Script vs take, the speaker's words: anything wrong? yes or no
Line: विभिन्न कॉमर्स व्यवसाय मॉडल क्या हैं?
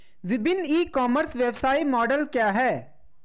yes